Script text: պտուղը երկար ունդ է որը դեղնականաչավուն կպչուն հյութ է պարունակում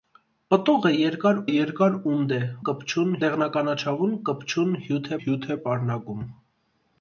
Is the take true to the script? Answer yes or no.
no